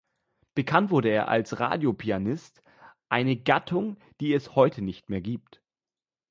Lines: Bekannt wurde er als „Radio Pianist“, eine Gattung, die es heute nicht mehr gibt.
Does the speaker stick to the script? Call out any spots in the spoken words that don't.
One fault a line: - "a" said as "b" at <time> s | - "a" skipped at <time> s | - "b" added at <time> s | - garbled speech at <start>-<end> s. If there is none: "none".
none